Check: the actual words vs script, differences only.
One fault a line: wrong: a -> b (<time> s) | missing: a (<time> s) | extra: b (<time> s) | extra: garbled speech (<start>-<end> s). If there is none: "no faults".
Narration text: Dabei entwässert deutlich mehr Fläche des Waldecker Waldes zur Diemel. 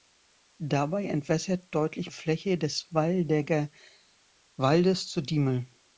missing: mehr (2.1 s)